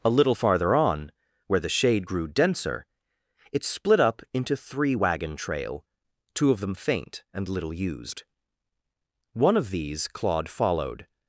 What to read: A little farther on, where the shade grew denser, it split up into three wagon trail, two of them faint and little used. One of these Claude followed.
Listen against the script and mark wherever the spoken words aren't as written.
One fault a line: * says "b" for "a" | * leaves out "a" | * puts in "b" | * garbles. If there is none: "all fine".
all fine